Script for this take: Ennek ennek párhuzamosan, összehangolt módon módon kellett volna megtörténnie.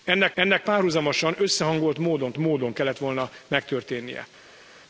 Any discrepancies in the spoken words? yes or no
no